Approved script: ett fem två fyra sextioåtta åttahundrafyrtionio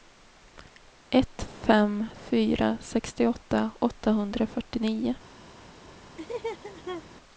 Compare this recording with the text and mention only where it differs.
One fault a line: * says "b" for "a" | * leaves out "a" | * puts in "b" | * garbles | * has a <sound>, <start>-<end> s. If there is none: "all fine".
* leaves out "två"
* has a laugh, 6.2-7.0 s